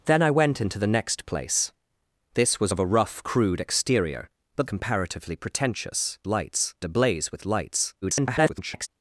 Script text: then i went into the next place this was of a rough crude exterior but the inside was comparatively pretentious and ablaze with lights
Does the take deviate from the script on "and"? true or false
true